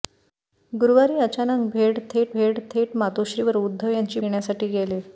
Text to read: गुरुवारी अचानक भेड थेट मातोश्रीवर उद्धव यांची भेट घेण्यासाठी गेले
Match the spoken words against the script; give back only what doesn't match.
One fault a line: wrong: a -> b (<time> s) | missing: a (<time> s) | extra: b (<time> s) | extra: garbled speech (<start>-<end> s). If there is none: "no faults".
extra: भेड थेट (2.3 s)
missing: भेट (4.2 s)